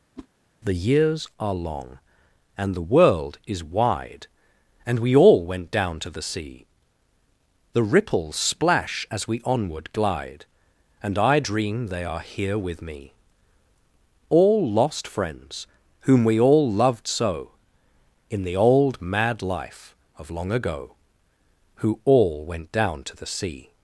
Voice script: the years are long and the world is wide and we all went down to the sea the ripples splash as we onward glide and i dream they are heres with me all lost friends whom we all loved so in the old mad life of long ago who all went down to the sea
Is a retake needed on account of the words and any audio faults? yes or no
yes